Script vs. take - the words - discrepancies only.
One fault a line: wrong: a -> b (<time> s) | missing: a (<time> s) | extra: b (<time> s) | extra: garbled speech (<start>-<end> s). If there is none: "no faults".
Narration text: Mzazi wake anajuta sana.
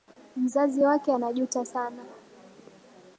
no faults